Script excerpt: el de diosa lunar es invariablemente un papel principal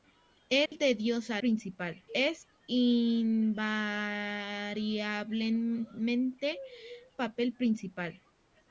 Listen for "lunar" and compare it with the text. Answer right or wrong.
wrong